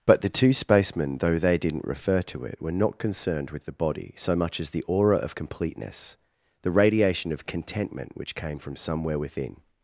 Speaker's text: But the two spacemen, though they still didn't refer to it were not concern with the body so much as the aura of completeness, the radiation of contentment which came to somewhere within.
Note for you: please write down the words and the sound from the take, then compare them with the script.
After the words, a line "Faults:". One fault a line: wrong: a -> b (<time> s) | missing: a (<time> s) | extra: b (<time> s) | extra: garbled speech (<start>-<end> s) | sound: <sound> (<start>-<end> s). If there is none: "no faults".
But the two spacemen, though they didn't refer to it were not concerned with the body so much as the aura of completeness, the radiation of contentment which came from somewhere within.
Faults:
missing: still (1.6 s)
wrong: concern -> concerned (3.0 s)
wrong: to -> from (8.6 s)